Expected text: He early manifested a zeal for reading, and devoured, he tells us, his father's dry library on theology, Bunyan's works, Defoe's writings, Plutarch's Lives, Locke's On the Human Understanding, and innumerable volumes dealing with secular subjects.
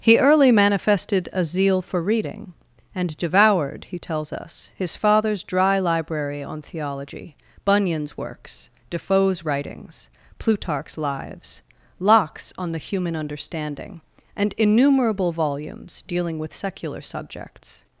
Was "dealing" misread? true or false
false